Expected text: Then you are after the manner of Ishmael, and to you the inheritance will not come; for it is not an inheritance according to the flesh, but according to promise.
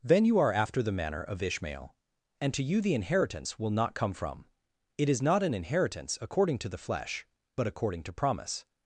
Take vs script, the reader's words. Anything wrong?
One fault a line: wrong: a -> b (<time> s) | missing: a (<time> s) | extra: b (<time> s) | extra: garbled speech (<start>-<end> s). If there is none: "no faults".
wrong: for -> from (4.1 s)